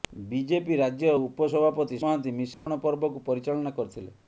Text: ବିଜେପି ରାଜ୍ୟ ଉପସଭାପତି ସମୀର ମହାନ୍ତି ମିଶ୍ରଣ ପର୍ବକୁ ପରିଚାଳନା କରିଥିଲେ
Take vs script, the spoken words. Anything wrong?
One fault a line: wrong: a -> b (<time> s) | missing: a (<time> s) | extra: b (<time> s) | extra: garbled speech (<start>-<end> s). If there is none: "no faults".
missing: ସମୀର (2.0 s)